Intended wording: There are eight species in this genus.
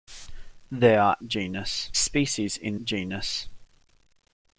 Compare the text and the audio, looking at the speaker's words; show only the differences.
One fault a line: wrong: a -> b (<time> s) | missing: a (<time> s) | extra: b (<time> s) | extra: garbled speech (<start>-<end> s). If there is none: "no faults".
wrong: eight -> genus (1.3 s)
missing: this (2.8 s)